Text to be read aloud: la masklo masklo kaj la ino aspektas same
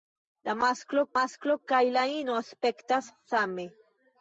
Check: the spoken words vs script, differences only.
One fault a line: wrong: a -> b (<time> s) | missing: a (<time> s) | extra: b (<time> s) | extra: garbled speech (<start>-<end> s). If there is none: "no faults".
no faults